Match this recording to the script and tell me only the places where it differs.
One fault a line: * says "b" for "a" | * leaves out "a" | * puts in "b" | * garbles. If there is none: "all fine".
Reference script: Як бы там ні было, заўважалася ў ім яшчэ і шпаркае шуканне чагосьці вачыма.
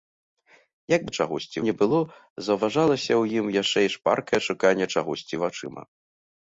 * says "чагосьці" for "там"